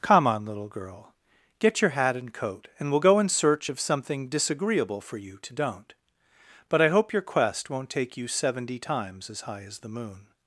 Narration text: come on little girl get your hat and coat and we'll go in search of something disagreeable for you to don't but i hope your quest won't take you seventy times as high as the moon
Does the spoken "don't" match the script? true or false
true